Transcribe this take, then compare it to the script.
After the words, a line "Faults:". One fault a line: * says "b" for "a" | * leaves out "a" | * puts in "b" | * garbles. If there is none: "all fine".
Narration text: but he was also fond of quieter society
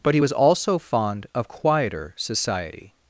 but he was also fond of quieter society
Faults:
all fine